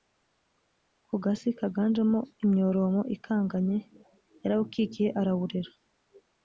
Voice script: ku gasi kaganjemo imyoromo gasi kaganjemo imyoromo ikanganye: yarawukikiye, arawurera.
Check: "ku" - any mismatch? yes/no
no